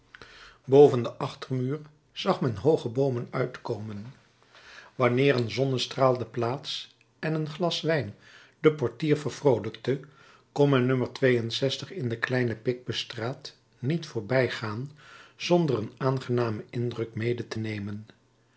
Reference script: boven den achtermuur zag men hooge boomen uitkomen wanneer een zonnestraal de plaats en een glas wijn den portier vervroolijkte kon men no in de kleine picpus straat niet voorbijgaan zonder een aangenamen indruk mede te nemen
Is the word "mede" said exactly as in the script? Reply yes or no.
yes